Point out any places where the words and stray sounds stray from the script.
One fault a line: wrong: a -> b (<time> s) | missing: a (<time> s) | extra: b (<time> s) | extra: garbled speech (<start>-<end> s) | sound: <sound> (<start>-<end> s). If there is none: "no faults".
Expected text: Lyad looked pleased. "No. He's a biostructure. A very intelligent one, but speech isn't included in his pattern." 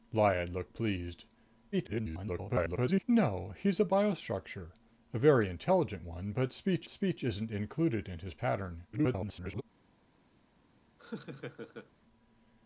extra: garbled speech (1.7-3.0 s)
extra: speech (6.9 s)
extra: garbled speech (8.9-9.6 s)
sound: laugh (11.0-11.9 s)